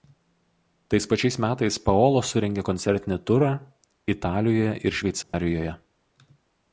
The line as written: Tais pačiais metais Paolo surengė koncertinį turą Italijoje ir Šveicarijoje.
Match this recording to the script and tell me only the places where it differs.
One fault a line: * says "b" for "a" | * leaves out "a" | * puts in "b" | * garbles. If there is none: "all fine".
all fine